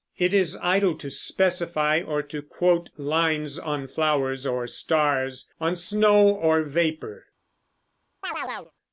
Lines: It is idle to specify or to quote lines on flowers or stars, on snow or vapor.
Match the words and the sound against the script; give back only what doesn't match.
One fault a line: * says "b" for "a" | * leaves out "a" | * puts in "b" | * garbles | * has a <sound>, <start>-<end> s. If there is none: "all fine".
* has a chirp, 8.2-8.7 s